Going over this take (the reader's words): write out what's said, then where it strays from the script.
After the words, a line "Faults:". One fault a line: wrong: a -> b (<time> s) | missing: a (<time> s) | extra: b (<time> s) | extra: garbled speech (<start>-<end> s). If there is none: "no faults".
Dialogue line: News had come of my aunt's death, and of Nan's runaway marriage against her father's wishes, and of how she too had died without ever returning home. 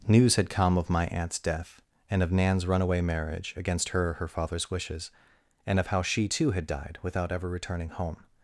News had come of my aunt's death, and of Nan's runaway marriage against her her father's wishes, and of how she too had died without ever returning home.
Faults:
extra: her (4.1 s)